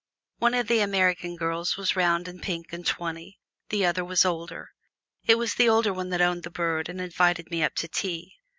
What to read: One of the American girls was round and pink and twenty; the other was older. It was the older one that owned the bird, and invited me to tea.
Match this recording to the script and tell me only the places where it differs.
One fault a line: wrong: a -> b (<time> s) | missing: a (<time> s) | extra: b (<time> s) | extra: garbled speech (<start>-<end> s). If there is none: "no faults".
extra: up (7.6 s)